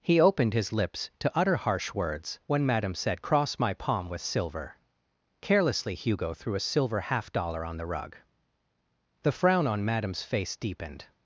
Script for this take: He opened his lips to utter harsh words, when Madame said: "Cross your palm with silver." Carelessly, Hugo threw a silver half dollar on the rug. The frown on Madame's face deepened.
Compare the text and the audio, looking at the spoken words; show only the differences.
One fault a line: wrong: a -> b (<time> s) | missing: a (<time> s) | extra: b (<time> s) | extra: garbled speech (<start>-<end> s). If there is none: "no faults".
wrong: your -> my (3.6 s)